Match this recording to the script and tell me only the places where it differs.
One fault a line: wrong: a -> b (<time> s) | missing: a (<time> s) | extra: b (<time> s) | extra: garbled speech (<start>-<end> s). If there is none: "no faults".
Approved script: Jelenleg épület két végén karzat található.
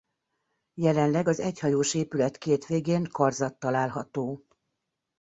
extra: az egyhajós (1.3 s)